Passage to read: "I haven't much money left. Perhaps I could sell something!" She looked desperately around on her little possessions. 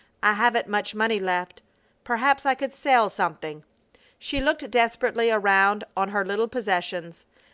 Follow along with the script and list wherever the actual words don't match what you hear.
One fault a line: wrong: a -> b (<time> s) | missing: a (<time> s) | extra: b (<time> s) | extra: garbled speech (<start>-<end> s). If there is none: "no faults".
no faults